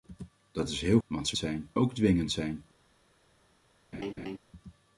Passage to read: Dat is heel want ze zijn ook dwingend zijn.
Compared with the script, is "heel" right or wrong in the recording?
right